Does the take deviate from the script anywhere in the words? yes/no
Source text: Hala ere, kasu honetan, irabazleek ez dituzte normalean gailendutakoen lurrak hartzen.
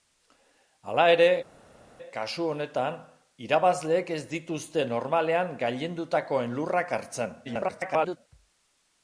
yes